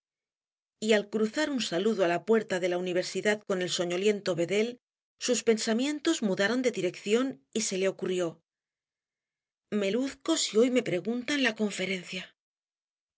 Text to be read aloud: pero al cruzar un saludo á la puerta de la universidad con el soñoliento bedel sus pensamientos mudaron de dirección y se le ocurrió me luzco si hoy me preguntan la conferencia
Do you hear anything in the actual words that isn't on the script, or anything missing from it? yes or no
yes